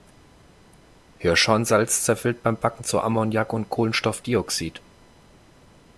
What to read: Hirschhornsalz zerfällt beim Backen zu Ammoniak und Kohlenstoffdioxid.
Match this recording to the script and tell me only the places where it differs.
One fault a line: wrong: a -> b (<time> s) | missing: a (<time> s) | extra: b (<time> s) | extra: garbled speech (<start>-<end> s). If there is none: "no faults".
no faults